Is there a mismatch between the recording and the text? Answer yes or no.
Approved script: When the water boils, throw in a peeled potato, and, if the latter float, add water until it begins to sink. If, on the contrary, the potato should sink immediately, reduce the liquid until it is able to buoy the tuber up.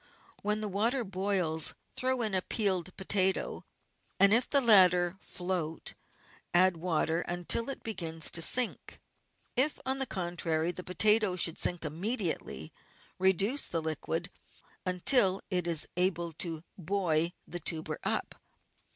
no